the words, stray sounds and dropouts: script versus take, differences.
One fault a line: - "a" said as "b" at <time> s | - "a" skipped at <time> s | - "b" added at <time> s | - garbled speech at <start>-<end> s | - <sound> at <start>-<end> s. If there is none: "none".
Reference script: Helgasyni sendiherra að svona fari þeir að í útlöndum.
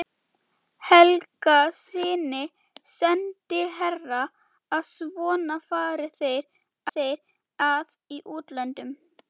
- "þeir" added at 7.0 s